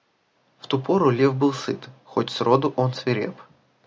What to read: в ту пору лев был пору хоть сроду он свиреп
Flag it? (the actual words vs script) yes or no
yes